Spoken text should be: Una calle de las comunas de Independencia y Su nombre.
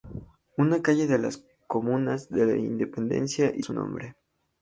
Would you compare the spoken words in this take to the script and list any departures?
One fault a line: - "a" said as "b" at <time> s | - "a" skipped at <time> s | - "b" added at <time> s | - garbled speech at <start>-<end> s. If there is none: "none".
none